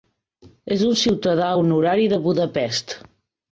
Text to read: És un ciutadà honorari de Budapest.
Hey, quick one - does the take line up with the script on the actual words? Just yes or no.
yes